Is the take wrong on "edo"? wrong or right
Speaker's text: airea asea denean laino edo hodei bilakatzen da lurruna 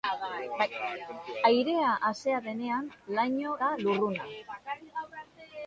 wrong